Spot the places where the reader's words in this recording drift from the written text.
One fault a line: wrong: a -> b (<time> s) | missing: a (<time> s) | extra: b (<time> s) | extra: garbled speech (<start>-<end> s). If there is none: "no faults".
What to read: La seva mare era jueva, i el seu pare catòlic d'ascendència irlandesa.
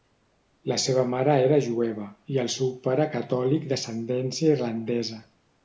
no faults